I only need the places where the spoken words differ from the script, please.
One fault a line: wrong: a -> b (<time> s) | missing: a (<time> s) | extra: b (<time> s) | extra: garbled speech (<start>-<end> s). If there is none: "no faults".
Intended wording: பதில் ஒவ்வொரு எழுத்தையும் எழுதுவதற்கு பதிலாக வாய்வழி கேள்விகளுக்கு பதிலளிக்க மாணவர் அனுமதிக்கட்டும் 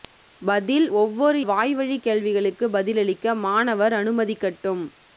missing: எழுத்தையும் எழுதுவதற்கு பதிலாக (1.4 s)